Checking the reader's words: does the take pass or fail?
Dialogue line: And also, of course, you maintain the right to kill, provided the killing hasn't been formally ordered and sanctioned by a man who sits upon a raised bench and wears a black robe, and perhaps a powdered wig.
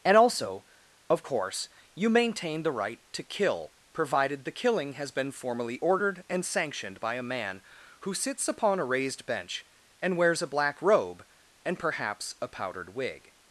fail